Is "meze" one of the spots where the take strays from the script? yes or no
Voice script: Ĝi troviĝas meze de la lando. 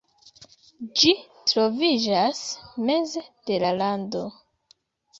no